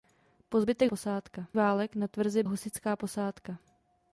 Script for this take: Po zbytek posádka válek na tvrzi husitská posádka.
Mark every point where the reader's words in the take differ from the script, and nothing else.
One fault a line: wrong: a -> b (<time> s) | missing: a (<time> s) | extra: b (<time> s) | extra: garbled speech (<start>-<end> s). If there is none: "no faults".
no faults